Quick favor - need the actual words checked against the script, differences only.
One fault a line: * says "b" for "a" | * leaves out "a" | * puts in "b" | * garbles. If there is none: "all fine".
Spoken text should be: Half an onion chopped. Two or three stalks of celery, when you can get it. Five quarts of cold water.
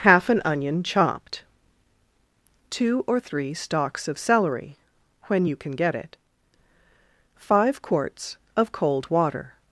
all fine